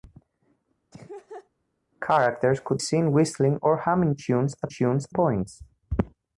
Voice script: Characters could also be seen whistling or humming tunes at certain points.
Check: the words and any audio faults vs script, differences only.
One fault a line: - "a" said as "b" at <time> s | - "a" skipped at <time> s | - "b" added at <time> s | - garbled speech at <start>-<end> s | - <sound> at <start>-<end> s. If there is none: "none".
- laugh at 0.9-1.5 s
- "also be" skipped at 2.8 s
- "certain" said as "tunes" at 4.7 s